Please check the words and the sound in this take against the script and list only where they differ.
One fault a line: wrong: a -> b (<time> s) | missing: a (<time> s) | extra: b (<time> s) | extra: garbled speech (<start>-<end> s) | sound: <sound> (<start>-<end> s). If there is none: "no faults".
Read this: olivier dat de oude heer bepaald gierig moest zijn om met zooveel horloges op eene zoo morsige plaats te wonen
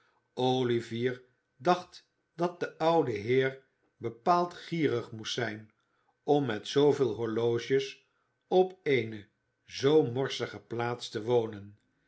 extra: dacht (1.6 s)